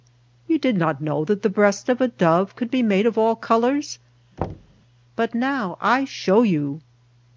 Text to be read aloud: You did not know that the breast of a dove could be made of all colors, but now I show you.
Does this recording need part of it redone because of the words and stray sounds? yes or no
yes